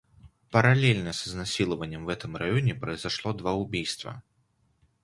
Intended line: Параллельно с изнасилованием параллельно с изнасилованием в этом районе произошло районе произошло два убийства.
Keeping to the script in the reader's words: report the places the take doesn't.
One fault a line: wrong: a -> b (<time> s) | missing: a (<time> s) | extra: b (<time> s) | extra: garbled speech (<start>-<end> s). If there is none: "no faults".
missing: параллельно с изнасилованием (2.0 s)
missing: районе произошло (3.3 s)